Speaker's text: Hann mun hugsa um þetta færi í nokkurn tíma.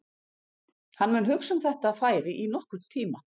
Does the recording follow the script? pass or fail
pass